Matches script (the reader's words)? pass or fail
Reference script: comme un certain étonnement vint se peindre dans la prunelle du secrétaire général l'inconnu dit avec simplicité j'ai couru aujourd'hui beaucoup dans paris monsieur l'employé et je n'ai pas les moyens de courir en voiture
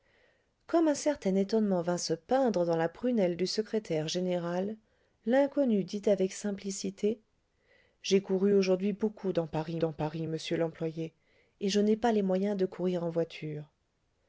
fail